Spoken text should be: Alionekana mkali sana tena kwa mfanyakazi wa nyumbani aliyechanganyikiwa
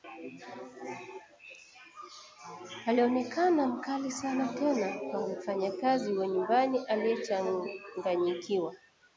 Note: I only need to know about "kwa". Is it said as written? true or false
true